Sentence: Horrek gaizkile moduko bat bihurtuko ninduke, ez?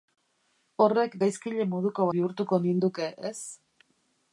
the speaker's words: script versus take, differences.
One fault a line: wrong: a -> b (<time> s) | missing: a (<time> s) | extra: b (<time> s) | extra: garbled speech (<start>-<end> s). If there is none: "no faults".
missing: bat (2.1 s)